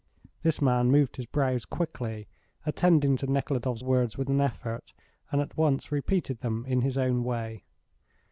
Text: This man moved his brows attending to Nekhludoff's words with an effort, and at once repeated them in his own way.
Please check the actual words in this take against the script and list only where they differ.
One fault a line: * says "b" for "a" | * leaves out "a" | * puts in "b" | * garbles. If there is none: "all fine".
* puts in "quickly"